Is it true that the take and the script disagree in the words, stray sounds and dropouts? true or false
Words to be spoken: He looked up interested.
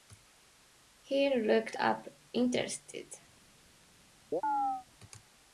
true